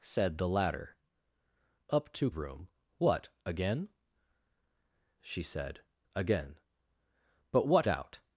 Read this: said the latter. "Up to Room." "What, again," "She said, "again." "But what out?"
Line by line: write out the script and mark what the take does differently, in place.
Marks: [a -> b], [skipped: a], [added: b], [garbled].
said the latter. "Up to Room." "What, again," "She said, "again." "But what out?"